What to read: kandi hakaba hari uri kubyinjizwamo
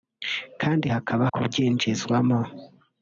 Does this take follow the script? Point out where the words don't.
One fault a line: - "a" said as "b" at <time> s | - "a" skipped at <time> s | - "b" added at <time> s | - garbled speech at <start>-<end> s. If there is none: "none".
- "hari uri" skipped at 1.2 s